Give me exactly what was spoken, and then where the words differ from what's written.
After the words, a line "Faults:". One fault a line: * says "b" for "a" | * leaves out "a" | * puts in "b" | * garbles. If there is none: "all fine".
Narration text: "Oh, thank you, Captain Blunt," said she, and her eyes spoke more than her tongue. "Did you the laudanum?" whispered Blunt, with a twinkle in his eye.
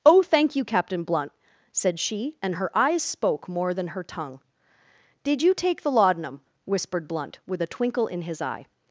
"Oh, thank you, Captain Blunt," said she, and her eyes spoke more than her tongue. "Did you take the laudanum?" whispered Blunt, with a twinkle in his eye.
Faults:
* puts in "take"